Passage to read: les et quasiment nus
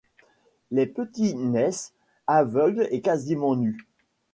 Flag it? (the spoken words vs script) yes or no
yes